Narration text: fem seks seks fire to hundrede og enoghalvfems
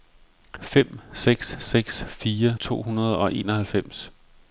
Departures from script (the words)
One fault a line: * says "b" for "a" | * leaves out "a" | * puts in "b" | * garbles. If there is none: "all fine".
all fine